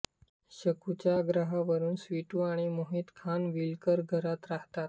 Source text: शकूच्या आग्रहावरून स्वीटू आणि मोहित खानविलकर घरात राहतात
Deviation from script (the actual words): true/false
false